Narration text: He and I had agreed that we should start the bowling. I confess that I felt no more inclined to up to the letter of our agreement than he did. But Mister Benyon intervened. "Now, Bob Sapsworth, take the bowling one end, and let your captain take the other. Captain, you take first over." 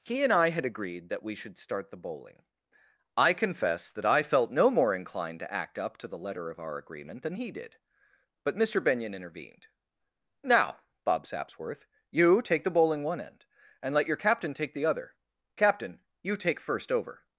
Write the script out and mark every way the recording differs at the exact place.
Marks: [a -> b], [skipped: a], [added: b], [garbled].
He and I had agreed that we should start the bowling. I confess that I felt no more inclined to [added: act] up to the letter of our agreement than he did. But Mister Benyon intervened. "Now, Bob Sapsworth, [added: you] take the bowling one end, and let your captain take the other. Captain, you take first over."